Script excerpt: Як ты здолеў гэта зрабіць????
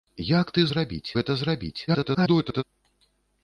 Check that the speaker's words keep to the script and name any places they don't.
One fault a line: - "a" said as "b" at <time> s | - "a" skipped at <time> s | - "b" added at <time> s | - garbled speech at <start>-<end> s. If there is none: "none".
- "здолеў" said as "зрабіць" at 0.7 s
- garbled speech at 1.9-2.6 s